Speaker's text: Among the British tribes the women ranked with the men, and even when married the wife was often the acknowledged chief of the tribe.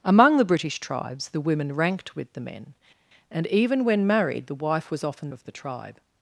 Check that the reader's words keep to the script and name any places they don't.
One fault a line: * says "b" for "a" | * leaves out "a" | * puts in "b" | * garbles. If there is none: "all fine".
* leaves out "the acknowledged chief"